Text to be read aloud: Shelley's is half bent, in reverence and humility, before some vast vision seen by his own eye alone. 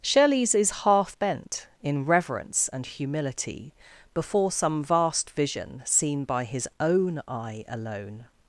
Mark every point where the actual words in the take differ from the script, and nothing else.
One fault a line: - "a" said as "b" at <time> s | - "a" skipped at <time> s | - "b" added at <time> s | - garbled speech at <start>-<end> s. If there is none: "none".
none